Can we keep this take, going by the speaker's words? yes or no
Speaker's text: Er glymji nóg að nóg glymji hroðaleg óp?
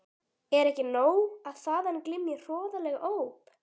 no